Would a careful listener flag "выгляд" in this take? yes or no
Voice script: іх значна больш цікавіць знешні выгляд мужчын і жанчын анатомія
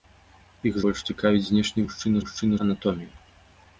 yes